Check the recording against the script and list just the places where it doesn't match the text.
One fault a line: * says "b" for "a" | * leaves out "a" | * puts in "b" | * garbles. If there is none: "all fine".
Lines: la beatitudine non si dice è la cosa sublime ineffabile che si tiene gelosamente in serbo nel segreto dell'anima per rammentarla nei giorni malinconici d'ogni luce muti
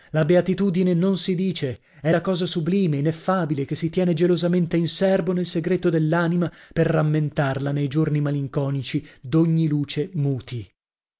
all fine